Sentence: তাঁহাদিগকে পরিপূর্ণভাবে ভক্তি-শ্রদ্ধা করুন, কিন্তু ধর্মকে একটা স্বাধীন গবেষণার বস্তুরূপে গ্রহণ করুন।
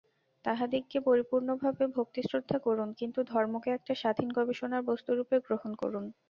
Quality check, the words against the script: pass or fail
pass